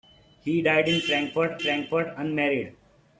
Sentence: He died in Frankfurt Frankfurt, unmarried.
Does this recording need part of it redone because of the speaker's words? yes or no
no